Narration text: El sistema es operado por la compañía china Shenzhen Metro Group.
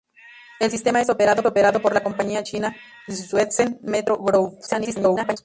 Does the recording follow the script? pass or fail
fail